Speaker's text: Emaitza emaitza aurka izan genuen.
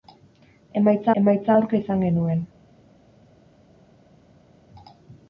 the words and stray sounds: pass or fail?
pass